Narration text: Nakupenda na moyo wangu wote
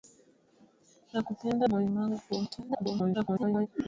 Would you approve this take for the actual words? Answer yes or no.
no